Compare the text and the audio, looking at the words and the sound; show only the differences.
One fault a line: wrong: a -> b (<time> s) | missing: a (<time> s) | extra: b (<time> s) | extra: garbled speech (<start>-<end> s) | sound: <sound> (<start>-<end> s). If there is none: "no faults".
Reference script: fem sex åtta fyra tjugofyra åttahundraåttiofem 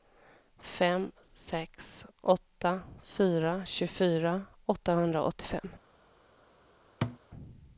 sound: thud (7.0-7.2 s)